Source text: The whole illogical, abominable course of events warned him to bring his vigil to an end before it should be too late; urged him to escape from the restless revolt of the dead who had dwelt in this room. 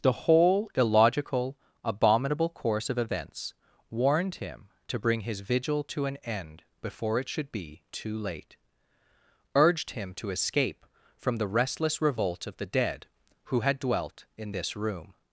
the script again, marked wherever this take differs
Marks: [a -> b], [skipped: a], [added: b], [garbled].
The whole illogical, abominable course of events warned him to bring his vigil to an end before it should be too late; urged him to escape from the restless revolt of the dead who had dwelt in this room.